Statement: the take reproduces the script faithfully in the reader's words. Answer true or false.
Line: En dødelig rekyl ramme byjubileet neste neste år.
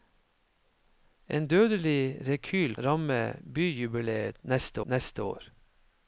true